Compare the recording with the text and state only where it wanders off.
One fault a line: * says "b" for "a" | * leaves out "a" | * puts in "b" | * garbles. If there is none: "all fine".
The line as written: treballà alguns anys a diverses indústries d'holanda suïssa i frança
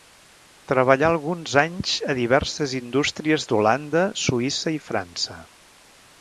all fine